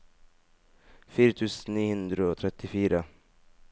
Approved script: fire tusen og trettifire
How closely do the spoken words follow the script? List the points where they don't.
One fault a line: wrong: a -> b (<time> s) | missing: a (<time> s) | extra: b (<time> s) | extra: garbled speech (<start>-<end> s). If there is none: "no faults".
extra: ni hundre (1.8 s)